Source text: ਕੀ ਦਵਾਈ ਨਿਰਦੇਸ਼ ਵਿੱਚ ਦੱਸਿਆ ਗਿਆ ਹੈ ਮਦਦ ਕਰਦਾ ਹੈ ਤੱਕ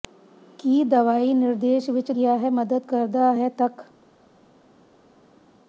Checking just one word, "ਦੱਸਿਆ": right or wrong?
wrong